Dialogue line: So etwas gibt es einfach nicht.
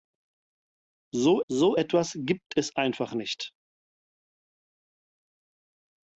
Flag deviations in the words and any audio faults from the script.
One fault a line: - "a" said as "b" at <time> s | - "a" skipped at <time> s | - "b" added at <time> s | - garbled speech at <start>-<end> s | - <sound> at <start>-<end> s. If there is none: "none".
- "so" added at 1.5 s